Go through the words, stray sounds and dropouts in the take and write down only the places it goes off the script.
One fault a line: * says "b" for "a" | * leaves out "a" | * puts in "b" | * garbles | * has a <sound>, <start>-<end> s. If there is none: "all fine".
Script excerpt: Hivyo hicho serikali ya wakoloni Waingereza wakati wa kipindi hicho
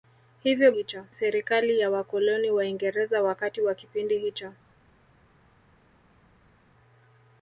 all fine